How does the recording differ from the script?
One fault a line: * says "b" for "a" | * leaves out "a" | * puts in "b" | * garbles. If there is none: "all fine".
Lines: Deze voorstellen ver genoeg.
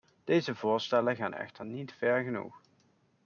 * puts in "gaan echter niet"